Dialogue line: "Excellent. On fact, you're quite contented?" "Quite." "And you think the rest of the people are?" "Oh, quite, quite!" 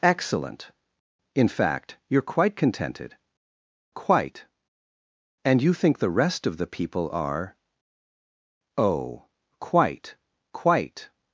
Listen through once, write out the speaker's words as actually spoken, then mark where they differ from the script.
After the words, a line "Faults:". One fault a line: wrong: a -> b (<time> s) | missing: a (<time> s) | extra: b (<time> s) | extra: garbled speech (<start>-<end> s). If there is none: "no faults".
"Excellent. In fact, you're quite contented?" "Quite." "And you think the rest of the people are?" "Oh, quite, quite!"
Faults:
wrong: On -> In (1.4 s)